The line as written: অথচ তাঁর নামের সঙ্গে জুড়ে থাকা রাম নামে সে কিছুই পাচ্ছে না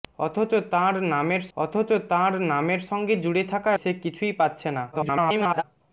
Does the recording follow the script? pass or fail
fail